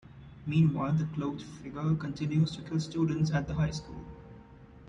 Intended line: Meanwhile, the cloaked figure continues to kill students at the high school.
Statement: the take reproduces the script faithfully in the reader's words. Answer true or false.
true